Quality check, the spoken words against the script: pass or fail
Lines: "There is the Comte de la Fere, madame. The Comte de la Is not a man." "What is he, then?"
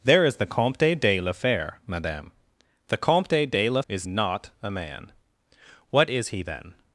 pass